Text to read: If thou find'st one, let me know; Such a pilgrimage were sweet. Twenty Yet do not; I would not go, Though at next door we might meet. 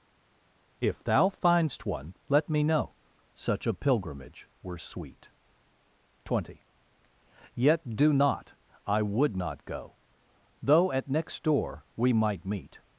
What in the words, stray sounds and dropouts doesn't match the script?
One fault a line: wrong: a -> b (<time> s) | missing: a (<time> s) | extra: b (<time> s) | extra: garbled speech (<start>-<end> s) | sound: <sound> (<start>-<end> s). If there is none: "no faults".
no faults